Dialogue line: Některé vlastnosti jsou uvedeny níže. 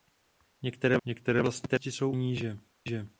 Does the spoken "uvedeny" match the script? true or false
false